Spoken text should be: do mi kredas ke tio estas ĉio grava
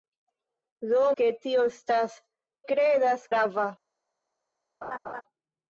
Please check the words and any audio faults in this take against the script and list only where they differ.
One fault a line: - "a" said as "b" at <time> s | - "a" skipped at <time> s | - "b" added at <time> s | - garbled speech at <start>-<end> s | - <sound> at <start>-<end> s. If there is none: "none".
- "mi kredas" skipped at 1.0 s
- "ĉio" said as "kredas" at 2.7 s
- laugh at 4.8-5.2 s